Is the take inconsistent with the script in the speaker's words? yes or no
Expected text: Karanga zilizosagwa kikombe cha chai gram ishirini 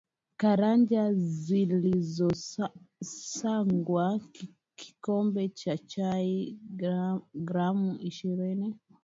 no